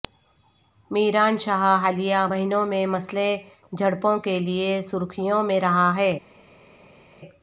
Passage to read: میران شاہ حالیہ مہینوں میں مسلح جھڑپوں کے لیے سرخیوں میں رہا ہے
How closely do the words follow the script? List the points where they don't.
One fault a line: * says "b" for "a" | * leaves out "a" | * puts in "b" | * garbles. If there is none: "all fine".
all fine